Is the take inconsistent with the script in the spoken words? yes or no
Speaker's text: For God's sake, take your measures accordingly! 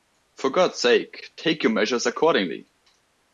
no